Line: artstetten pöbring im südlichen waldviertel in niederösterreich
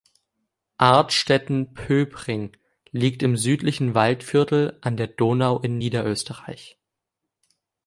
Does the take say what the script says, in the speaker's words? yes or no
no